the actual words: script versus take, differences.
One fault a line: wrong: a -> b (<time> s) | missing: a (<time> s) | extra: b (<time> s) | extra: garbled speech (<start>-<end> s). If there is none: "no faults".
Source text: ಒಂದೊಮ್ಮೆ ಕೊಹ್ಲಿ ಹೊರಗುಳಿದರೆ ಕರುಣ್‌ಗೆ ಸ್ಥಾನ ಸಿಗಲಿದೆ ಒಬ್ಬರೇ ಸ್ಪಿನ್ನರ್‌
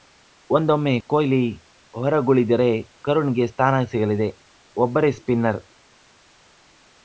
no faults